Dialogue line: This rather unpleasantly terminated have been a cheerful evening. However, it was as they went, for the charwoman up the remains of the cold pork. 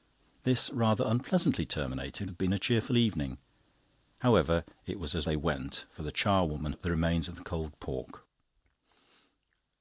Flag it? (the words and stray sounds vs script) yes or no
no